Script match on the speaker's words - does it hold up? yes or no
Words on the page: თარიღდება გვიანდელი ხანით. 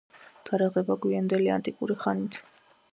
no